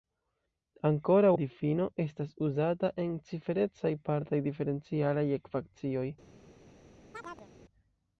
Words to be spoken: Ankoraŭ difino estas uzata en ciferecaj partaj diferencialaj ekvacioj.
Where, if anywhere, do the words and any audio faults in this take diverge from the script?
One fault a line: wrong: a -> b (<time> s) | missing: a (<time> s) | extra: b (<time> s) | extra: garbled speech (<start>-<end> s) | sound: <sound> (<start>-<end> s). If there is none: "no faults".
sound: chirp (7.1-7.5 s)